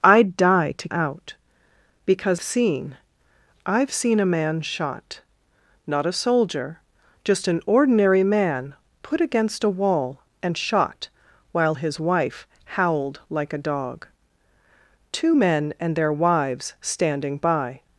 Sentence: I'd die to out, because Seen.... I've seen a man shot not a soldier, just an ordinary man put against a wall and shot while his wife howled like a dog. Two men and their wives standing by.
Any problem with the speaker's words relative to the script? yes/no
no